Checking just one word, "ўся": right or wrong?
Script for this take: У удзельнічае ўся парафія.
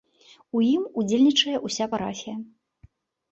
right